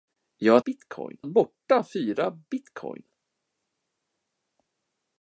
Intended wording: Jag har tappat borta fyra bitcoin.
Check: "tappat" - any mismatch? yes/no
yes